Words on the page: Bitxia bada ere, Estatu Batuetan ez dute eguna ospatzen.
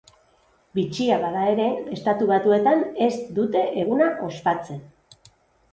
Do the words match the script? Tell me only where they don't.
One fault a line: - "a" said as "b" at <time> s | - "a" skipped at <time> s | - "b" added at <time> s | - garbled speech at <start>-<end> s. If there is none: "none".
none